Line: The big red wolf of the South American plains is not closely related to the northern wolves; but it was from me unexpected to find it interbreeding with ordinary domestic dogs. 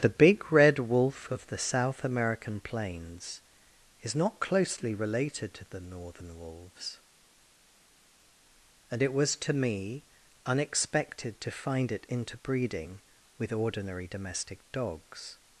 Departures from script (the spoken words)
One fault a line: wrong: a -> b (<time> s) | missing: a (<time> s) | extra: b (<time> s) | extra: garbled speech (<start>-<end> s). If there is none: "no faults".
wrong: but -> and (8.9 s)
wrong: from -> to (9.3 s)